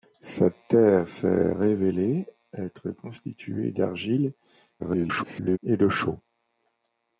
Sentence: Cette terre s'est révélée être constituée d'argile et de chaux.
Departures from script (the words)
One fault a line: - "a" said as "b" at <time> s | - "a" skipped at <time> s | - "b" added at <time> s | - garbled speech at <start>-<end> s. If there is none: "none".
- garbled speech at 4.8-5.6 s